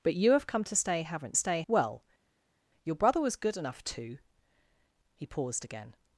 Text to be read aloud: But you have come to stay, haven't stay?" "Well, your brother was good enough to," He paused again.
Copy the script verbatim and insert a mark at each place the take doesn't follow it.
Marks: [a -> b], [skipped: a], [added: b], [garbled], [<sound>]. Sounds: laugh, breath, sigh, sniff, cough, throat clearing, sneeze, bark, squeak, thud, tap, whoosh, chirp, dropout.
But you have come to stay, haven't stay?" "Well, your brother was good enough to," He paused again.